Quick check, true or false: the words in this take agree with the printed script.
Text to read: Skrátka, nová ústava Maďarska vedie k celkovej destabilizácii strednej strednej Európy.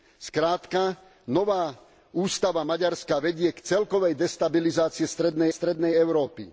true